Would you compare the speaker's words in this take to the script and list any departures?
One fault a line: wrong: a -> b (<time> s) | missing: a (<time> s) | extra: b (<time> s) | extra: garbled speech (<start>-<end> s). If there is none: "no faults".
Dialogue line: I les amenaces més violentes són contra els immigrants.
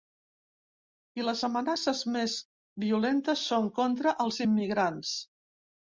no faults